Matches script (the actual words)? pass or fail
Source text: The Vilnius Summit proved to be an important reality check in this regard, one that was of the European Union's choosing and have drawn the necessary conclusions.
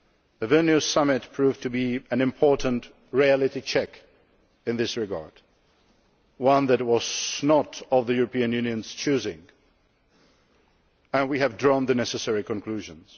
fail